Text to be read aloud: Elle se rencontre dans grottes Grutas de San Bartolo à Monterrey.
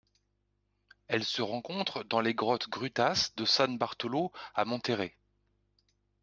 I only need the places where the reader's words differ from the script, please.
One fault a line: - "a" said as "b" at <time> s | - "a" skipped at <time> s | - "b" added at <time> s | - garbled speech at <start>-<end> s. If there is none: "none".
- "les" added at 2.2 s